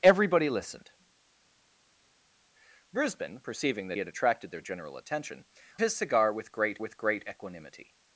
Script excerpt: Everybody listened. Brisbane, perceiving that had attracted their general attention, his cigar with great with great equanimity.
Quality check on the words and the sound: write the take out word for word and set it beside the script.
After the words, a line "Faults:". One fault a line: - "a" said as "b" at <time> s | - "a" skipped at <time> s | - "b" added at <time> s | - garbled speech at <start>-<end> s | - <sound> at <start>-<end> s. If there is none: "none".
Everybody listened. Brisbane, perceiving that had attracted their general attention, his cigar with great with great equanimity.
Faults:
none